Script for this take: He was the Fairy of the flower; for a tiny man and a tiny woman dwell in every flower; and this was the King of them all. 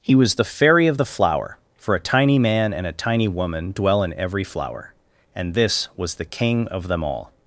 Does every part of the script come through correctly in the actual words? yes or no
yes